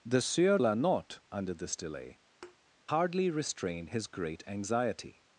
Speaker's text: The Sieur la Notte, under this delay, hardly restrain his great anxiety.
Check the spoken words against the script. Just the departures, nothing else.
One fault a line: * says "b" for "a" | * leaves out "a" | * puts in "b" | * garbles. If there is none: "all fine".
all fine